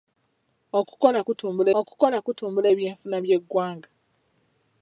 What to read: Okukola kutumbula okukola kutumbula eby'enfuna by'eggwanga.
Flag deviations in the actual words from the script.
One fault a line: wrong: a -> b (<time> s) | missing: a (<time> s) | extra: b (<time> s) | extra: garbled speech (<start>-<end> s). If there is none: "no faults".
no faults